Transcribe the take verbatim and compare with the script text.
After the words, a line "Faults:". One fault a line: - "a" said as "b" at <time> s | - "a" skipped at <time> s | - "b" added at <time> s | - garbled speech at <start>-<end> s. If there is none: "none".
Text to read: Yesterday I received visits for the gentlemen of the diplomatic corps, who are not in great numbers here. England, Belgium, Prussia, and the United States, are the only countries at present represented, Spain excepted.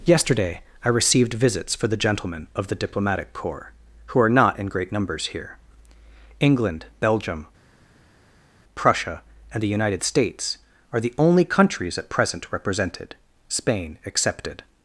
Yesterday I received visits for the gentlemen of the diplomatic corps, who are not in great numbers here. England, Belgium, Prussia, and the United States, are the only countries at present represented, Spain excepted.
Faults:
none